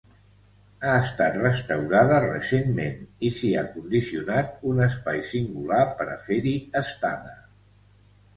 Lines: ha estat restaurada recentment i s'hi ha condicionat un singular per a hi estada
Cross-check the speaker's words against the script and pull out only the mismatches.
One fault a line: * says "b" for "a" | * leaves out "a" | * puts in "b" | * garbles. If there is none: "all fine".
* puts in "espai"
* puts in "fer"